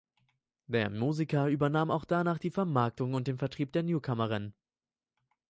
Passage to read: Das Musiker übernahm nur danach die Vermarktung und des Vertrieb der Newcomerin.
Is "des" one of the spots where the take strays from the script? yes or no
yes